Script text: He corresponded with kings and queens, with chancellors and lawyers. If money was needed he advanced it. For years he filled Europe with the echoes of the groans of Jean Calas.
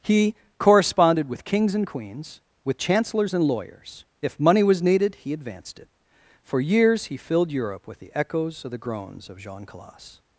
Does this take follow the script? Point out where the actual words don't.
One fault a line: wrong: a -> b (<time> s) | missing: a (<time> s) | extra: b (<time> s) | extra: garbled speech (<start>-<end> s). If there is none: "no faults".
no faults